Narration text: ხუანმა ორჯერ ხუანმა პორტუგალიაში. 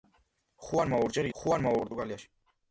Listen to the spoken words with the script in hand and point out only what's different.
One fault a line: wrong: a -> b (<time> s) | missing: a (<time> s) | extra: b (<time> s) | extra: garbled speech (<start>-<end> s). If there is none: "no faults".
no faults